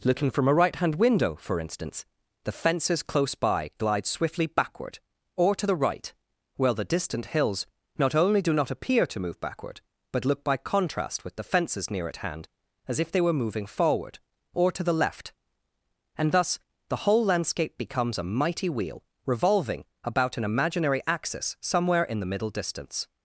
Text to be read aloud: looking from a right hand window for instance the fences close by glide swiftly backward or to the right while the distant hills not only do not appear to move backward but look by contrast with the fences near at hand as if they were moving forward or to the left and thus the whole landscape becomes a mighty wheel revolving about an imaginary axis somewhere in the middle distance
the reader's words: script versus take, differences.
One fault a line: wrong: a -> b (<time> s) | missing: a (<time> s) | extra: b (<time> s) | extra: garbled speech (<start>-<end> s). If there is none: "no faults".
no faults